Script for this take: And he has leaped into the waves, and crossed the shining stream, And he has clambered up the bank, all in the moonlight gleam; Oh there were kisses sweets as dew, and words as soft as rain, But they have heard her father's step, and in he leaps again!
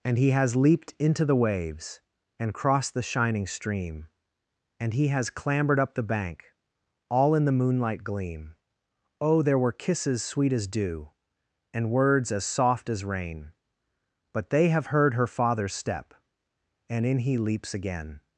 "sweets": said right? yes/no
no